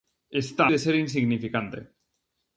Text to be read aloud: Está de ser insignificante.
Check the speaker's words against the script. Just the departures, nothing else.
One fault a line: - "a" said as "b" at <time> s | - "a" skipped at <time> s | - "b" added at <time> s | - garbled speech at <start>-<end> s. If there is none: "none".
none